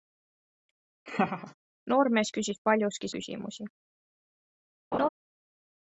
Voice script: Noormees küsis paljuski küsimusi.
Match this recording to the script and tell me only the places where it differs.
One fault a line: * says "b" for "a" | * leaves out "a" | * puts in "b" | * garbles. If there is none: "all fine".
all fine